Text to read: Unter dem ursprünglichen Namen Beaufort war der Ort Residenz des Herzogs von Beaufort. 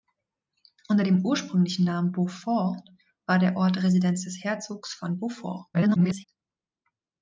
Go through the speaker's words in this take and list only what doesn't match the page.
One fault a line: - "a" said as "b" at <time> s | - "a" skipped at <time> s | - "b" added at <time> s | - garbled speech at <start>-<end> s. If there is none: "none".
- garbled speech at 5.7-6.2 s